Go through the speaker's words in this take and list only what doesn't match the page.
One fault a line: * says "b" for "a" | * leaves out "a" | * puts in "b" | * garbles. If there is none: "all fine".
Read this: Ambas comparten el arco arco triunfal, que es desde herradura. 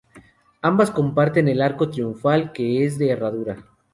* leaves out "arco"
* says "de" for "desde"